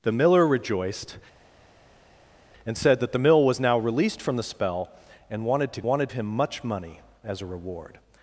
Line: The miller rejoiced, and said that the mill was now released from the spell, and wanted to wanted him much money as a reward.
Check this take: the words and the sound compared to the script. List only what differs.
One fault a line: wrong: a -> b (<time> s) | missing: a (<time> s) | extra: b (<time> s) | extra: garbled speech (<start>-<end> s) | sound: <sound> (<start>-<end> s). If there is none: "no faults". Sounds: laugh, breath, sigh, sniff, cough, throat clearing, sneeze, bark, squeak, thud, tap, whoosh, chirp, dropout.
no faults